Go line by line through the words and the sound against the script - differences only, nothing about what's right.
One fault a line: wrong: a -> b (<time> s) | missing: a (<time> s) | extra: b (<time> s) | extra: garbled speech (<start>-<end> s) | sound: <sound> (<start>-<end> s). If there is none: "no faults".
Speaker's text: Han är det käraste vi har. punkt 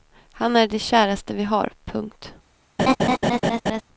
sound: laugh (2.8-3.8 s)